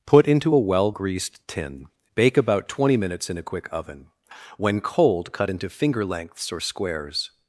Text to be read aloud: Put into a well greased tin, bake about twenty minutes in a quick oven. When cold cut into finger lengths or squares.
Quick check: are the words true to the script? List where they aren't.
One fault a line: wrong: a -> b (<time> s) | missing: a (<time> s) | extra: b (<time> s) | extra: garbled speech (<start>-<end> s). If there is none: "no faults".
no faults